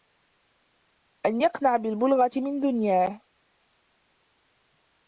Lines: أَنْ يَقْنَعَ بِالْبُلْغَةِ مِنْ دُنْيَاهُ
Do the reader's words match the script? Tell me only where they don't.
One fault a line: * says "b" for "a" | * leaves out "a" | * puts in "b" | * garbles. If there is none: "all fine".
all fine